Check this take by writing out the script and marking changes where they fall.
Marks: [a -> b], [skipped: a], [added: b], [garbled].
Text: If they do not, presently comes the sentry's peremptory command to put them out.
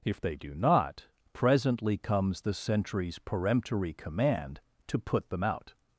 If they do not, presently comes the sentry's peremptory command to put them out.